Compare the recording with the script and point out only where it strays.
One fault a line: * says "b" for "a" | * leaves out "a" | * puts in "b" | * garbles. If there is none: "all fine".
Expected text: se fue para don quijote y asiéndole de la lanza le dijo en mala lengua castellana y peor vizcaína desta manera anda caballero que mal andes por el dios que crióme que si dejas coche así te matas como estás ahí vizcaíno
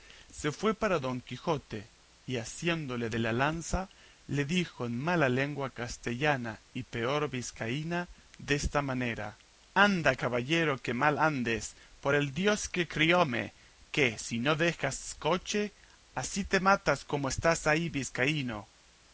* puts in "no"